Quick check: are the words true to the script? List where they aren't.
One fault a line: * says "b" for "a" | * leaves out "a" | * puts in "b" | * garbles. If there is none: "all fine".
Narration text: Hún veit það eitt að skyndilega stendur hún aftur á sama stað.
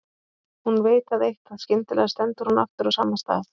all fine